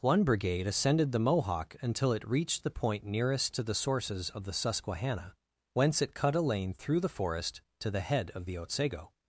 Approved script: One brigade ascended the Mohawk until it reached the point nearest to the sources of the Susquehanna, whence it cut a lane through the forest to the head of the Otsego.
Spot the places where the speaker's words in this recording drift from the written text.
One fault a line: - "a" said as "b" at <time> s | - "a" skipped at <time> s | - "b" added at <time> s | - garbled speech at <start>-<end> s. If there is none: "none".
none